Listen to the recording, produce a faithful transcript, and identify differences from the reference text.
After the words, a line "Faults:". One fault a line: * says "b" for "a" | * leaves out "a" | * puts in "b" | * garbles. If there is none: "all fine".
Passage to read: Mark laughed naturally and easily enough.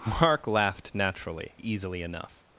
Mark laughed naturally easily enough.
Faults:
* leaves out "and"